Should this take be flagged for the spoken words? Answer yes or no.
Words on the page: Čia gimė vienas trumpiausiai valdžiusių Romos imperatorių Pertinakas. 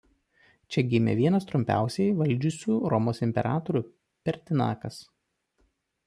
no